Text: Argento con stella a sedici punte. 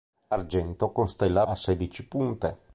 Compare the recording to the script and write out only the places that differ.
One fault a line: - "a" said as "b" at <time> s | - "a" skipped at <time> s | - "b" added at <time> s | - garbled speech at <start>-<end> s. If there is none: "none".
none